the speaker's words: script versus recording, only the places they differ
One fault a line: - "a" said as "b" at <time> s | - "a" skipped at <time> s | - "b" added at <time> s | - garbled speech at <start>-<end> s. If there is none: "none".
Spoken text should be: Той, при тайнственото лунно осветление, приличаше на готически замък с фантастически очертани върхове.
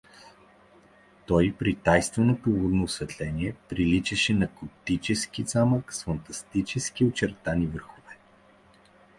none